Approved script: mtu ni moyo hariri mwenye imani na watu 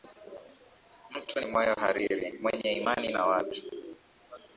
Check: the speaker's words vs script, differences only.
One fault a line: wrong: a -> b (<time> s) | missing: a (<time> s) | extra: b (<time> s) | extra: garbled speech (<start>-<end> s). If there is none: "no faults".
no faults